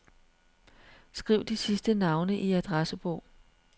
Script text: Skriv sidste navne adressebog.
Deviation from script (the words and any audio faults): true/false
true